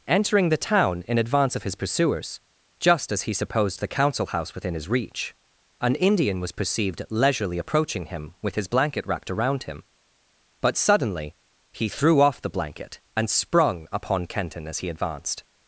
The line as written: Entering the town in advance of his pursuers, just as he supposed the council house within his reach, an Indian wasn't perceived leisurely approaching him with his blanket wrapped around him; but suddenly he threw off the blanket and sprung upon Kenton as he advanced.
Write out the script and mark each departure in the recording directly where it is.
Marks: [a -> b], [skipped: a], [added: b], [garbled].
Entering the town in advance of his pursuers, just as he supposed the council house within his reach, an Indian [wasn't -> was] perceived leisurely approaching him with his blanket wrapped around him; but suddenly he threw off the blanket and sprung upon Kenton as he advanced.